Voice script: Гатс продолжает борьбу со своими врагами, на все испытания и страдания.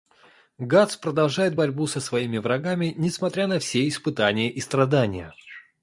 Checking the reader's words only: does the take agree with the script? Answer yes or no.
no